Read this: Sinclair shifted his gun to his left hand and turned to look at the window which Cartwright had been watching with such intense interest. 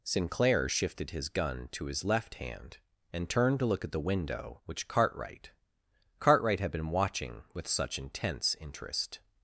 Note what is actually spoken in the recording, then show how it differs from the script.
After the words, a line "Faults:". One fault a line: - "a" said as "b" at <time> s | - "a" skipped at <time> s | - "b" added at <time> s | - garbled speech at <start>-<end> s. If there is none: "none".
Sinclair shifted his gun to his left hand and turned to look at the window which Cartwright Cartwright had been watching with such intense interest.
Faults:
- "Cartwright" added at 6.2 s